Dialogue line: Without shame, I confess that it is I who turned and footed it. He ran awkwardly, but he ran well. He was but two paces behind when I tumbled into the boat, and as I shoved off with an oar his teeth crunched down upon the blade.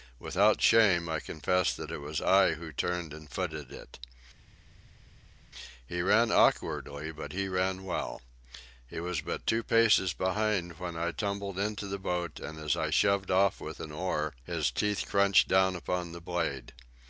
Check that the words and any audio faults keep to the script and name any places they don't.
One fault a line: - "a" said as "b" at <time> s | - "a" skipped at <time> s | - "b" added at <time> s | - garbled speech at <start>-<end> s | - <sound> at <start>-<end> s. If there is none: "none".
- "is" said as "was" at 2.0 s